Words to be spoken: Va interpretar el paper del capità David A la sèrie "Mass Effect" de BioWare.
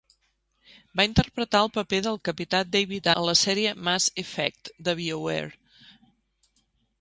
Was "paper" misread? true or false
false